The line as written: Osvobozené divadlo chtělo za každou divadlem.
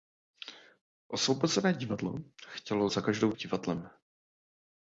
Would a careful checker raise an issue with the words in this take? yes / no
no